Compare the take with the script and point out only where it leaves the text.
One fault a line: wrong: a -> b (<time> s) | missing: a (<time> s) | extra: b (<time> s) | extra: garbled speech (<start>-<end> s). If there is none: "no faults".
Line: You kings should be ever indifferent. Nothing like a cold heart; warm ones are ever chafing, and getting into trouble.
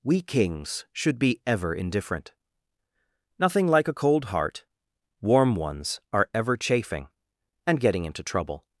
wrong: You -> We (0.0 s)